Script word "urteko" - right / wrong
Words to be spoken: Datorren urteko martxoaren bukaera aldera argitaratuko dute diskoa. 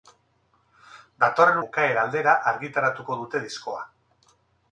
wrong